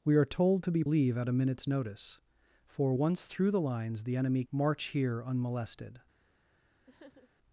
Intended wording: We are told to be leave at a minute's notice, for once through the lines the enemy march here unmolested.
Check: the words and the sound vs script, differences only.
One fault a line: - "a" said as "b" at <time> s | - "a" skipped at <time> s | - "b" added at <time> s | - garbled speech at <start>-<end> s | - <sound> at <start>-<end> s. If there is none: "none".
- sniff at 6.9-7.3 s